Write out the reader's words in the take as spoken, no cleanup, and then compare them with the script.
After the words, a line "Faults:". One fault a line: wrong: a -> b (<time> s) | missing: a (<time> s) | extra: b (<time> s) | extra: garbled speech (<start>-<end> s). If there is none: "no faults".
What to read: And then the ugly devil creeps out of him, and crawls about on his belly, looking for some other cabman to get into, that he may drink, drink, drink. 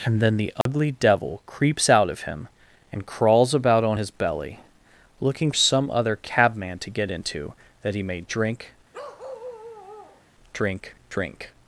And then the ugly devil creeps out of him, and crawls about on his belly, looking some other cabman to get into, that he may drink, drink, drink.
Faults:
missing: for (5.5 s)